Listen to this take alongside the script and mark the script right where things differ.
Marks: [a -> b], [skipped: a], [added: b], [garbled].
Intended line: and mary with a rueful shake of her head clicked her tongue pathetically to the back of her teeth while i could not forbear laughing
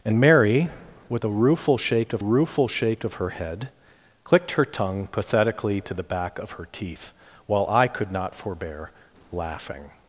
and mary with a rueful shake of [added: rueful shake of] her head clicked her tongue pathetically to the back of her teeth while i could not forbear laughing